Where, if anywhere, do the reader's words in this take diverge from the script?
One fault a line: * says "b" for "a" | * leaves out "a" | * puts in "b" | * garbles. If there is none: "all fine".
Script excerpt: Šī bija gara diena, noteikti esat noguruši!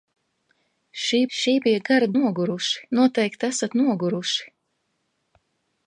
* puts in "šī"
* says "noguruši" for "diena"